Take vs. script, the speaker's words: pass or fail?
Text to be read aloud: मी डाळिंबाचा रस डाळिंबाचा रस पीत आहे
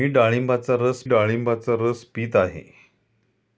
pass